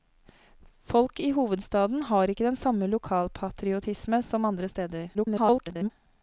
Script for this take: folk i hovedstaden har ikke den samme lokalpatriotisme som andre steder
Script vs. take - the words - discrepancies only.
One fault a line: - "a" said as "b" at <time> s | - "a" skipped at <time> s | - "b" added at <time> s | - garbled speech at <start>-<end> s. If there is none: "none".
- garbled speech at 5.1-5.9 s